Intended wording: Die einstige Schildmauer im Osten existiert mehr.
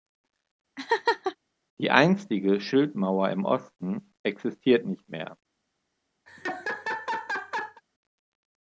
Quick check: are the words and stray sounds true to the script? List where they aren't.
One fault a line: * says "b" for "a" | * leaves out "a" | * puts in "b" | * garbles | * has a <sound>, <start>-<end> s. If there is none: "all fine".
* has a laugh, 0.8-1.4 s
* puts in "nicht"
* has a laugh, 6.3-7.8 s